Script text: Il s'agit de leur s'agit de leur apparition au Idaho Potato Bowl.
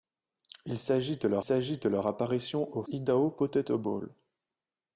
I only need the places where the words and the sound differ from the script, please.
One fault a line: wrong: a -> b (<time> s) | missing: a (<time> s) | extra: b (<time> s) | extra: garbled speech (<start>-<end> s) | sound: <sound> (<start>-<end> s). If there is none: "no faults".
no faults